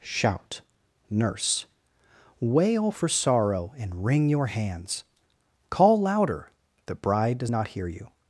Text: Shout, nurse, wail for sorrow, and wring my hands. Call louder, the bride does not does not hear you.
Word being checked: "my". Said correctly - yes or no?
no